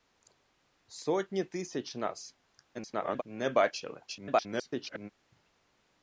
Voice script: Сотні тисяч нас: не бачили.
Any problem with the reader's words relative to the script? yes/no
yes